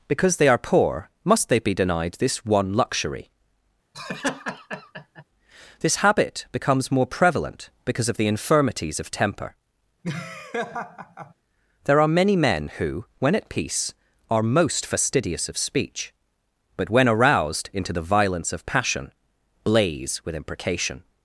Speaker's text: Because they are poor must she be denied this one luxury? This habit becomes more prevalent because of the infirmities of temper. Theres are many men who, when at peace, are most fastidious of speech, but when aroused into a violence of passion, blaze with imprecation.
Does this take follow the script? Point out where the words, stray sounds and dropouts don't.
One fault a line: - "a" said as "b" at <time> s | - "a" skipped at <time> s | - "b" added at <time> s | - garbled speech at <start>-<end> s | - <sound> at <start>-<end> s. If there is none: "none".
- "she" said as "they" at 1.5 s
- laugh at 3.9-5.2 s
- laugh at 10.0-11.3 s
- "Theres" said as "There" at 11.8 s
- "a" said as "the" at 17.9 s